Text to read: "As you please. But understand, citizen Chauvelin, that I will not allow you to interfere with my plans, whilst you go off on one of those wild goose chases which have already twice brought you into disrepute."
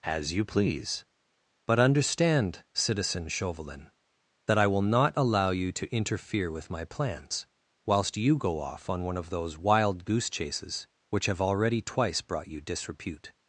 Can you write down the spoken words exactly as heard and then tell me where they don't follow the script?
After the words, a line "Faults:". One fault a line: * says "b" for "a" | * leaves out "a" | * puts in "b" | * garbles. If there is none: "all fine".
"As you please. But understand, citizen Chauvelin, that I will not allow you to interfere with my plans, whilst you go off on one of those wild goose chases which have already twice brought you disrepute."
Faults:
* leaves out "into"